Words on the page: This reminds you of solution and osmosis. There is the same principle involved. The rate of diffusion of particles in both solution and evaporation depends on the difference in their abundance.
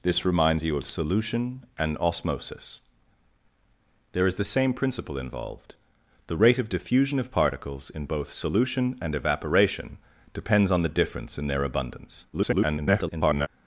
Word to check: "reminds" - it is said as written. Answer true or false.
true